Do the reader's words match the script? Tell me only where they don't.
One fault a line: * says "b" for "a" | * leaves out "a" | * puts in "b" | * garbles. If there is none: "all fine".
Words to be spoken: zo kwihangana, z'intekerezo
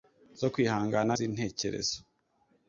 all fine